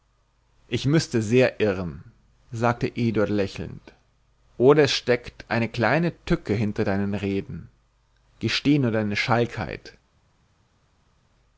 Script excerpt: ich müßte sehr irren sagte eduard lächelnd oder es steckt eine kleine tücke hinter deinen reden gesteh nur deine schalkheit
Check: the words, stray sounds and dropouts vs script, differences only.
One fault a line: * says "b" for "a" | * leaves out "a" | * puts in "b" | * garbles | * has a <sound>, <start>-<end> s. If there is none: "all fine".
all fine